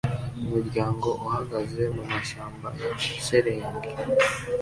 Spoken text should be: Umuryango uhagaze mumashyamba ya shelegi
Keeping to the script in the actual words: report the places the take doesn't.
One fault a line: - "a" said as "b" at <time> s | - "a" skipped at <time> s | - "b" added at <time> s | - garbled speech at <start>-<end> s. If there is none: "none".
none